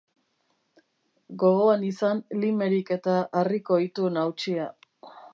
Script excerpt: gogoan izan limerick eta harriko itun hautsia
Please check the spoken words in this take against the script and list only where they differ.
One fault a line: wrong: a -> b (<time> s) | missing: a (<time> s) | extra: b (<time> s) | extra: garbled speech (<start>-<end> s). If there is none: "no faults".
no faults